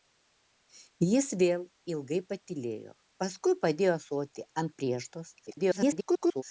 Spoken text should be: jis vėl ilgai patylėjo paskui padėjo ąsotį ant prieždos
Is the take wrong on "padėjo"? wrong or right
right